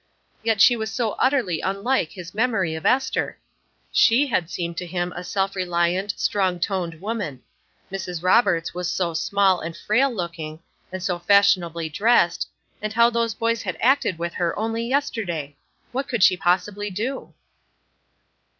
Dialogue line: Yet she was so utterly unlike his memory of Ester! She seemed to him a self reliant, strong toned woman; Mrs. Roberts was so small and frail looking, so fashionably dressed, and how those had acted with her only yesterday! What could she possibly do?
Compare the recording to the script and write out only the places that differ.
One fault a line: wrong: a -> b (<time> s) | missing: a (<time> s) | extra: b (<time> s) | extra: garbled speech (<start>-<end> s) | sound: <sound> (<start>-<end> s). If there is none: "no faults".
extra: had (4.2 s)
extra: and (10.9 s)
extra: boys (13.3 s)